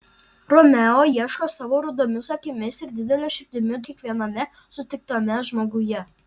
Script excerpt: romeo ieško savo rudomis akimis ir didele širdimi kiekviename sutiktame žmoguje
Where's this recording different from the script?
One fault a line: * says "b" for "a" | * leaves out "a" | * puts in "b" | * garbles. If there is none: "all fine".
all fine